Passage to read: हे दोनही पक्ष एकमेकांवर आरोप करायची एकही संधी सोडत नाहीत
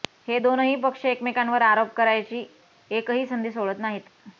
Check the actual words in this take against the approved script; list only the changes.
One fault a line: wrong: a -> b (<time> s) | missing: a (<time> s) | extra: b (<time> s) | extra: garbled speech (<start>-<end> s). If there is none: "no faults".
no faults